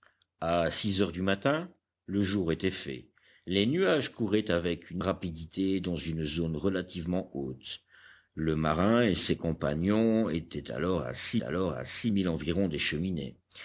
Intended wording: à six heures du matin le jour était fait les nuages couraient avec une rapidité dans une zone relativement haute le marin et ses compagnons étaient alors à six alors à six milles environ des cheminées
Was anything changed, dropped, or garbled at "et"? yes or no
no